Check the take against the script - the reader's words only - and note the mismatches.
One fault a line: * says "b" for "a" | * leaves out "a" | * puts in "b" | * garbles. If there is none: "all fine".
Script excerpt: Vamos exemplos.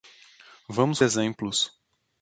all fine